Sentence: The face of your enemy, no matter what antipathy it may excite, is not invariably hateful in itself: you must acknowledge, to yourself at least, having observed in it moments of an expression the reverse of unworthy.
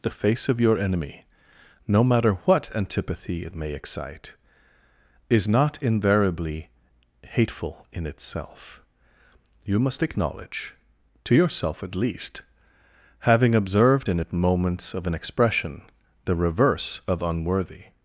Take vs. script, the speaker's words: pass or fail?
pass